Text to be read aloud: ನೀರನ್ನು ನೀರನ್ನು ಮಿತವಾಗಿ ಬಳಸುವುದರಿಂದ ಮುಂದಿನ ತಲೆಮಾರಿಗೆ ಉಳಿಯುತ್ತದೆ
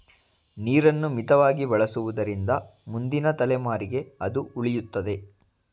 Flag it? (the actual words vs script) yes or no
yes